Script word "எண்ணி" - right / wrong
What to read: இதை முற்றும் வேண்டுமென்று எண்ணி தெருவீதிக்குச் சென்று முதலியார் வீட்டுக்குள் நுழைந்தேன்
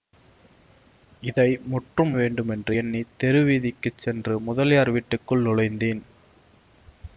right